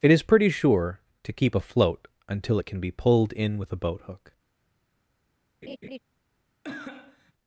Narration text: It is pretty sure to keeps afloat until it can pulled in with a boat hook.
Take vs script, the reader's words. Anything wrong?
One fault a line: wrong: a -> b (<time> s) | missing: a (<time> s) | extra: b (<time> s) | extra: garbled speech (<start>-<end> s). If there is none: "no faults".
wrong: keeps -> keep (1.3 s)
extra: be (2.8 s)